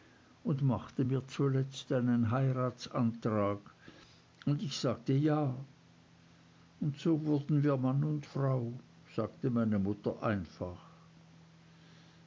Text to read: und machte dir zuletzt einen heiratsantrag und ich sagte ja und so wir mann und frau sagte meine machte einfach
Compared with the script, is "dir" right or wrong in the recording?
wrong